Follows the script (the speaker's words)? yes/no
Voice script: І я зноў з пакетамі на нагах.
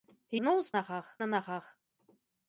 no